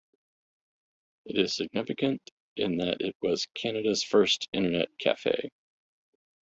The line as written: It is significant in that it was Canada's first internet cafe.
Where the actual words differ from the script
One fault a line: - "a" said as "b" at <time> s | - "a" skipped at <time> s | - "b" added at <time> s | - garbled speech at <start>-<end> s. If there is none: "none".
none